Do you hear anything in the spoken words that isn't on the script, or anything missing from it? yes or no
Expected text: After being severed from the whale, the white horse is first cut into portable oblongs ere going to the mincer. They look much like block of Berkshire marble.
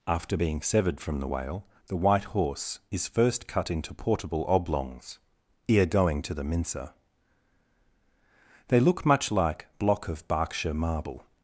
no